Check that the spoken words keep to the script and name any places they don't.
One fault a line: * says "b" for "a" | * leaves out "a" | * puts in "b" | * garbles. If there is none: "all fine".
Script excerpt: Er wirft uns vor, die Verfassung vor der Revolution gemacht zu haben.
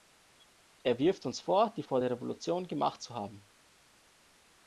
* leaves out "Verfassung"